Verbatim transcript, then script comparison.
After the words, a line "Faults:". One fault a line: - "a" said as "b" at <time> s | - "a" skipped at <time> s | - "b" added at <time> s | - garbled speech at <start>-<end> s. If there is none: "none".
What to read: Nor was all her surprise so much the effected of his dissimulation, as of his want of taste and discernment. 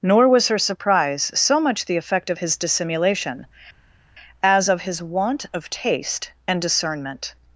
Nor was her surprise so much the effect of his dissimulation, as of his want of taste and discernment.
Faults:
- "all" skipped at 0.5 s
- "effected" said as "effect" at 2.0 s